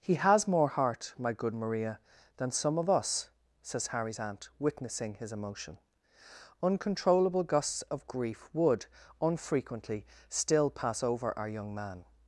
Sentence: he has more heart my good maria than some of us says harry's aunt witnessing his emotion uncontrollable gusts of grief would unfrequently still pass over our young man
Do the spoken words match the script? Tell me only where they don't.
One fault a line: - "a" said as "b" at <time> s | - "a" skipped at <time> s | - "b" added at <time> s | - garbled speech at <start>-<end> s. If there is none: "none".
none